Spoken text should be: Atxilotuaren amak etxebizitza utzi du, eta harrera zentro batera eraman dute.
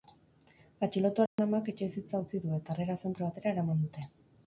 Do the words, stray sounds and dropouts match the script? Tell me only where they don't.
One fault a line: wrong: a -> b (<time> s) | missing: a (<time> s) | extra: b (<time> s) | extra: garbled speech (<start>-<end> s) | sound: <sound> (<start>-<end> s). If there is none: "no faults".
sound: dropout (1.3-1.4 s)